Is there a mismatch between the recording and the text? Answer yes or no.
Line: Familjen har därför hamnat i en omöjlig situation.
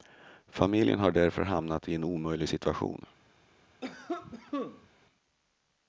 no